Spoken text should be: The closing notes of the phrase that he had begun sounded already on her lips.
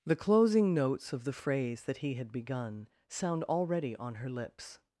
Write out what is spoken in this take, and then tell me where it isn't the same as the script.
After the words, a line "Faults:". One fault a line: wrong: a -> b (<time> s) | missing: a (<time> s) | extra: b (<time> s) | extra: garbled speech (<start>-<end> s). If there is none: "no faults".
The closing notes of the phrase that he had begun sound already on her lips.
Faults:
wrong: sounded -> sound (3.1 s)